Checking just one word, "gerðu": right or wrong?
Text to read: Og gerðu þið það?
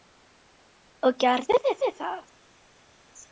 right